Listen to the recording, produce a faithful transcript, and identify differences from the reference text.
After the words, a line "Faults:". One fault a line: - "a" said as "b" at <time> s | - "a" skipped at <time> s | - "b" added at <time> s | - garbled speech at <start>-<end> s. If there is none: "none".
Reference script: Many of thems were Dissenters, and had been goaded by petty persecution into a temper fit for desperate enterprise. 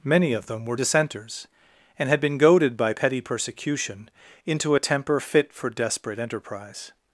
Many of them were Dissenters, and had been goaded by petty persecution into a temper fit for desperate enterprise.
Faults:
- "thems" said as "them" at 0.5 s